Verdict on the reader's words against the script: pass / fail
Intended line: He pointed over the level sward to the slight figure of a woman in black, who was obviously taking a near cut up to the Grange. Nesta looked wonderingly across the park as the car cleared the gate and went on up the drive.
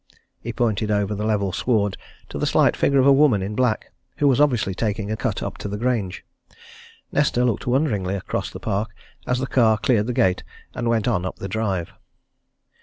fail